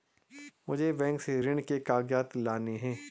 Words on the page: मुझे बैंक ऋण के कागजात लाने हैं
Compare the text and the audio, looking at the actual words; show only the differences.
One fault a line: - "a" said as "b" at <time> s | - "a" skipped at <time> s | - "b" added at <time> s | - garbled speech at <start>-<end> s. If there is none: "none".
- "से" added at 1.2 s